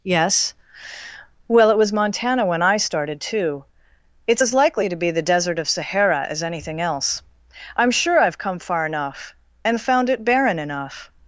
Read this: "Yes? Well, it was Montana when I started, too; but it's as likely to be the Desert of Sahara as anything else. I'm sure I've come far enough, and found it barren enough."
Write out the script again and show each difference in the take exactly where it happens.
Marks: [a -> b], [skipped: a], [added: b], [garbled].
"Yes? Well, it was Montana when I started, too; [skipped: but] it's as likely to be the Desert of Sahara as anything else. I'm sure I've come far enough, and found it barren enough."